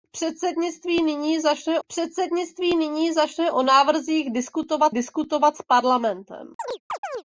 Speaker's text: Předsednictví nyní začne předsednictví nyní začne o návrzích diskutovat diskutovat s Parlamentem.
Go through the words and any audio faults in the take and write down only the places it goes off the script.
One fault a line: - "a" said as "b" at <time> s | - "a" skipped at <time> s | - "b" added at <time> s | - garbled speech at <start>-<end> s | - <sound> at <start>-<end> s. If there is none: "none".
- chirp at 6.6-7.2 s